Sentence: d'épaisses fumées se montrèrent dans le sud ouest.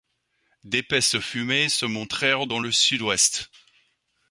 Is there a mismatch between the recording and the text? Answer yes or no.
no